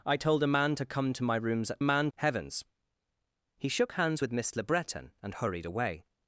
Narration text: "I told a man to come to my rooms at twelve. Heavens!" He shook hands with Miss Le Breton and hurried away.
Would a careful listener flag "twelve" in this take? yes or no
yes